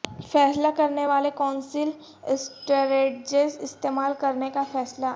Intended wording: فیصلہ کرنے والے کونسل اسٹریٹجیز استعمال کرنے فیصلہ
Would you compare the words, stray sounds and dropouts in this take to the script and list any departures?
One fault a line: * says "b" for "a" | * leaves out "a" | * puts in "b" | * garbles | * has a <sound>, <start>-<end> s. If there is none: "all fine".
* puts in "کا"